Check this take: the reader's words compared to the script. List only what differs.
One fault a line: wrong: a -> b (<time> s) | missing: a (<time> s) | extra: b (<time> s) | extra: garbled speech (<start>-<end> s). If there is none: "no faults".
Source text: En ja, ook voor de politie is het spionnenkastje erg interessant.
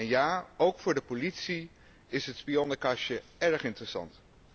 no faults